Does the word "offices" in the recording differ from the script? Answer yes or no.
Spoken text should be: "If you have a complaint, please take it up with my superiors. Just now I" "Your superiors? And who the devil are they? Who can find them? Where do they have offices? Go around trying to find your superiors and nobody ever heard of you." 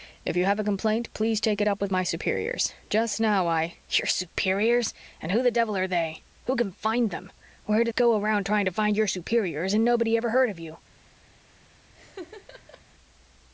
yes